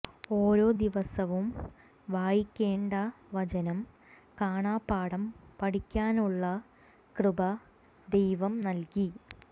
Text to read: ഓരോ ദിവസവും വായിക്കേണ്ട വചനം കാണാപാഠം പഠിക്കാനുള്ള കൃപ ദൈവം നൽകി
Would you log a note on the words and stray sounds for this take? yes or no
no